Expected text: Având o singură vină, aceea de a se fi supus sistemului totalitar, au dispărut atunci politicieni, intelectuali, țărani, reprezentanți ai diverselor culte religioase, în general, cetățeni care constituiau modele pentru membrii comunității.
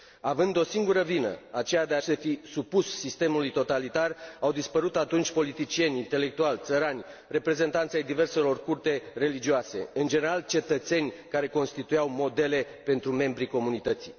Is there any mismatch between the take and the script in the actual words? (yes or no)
no